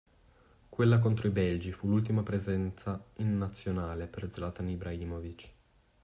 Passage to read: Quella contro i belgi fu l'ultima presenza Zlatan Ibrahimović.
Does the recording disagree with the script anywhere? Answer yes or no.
yes